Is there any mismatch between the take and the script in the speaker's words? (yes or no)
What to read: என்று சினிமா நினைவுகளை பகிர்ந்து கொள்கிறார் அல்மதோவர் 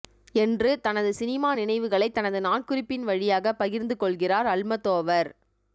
yes